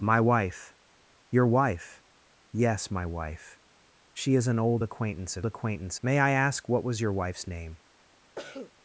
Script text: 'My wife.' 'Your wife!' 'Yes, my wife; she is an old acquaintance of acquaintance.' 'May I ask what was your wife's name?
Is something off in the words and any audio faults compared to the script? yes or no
yes